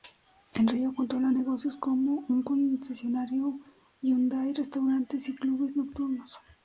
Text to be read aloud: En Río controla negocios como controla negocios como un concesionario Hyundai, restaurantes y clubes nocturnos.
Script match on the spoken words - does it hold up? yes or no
no